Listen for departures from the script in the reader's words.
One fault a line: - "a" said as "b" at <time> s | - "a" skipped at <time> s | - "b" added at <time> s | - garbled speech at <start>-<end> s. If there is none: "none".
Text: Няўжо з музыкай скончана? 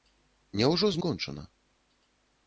- "музыкай" skipped at 1.0 s